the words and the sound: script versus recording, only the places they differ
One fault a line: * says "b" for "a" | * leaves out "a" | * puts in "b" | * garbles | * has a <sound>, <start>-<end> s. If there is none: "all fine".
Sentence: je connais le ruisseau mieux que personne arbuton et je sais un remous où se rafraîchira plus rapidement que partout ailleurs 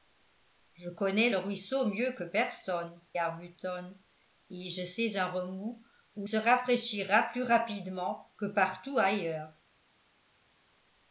all fine